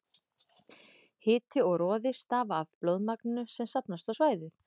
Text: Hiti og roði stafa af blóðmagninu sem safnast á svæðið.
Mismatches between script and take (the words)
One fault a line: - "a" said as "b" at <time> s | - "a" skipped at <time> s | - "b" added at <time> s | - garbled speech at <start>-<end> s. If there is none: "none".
none